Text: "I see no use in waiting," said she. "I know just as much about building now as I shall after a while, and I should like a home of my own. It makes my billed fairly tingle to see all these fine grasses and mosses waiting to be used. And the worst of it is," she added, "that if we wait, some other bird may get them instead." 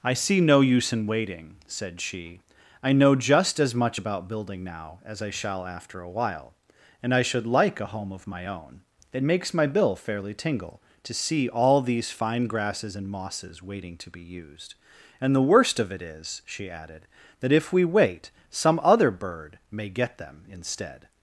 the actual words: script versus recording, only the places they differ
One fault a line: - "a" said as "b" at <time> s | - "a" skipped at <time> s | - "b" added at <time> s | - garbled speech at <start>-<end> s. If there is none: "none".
- "billed" said as "bill" at 9.7 s